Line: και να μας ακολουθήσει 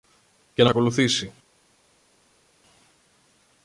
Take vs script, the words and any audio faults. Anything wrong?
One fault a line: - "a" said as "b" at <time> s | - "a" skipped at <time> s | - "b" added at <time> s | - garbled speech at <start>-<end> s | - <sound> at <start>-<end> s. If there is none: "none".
- "μας" skipped at 0.7 s